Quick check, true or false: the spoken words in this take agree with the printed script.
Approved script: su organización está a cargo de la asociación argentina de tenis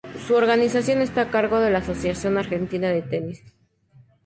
true